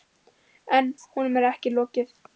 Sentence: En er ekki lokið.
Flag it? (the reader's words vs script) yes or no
yes